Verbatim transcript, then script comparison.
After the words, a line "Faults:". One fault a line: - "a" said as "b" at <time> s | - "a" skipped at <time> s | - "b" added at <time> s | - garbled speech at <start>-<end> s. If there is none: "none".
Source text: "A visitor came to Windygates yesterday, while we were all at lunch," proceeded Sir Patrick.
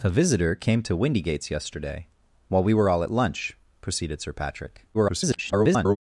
"A visitor came to Windygates yesterday, while we were all at lunch," proceeded Sir Patrick. [garbled]
Faults:
- garbled speech at 4.9-6.0 s